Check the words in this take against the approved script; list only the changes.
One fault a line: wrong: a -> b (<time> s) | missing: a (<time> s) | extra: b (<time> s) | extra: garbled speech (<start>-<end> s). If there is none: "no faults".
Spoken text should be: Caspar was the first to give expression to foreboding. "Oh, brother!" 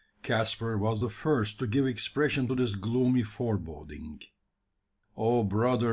extra: this gloomy (2.5 s)